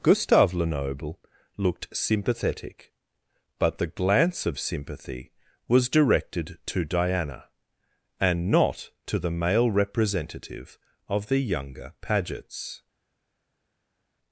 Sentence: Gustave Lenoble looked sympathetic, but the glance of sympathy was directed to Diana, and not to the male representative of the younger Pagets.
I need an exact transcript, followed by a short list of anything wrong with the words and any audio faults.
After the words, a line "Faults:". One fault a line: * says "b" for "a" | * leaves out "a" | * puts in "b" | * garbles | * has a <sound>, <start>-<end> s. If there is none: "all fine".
Gustave Lenoble looked sympathetic, but the glance of sympathy was directed to Diana, and not to the male representative of the younger Pagets.
Faults:
all fine